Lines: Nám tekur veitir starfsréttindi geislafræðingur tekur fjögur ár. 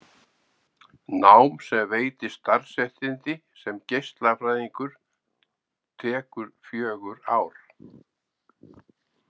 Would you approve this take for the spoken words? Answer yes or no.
no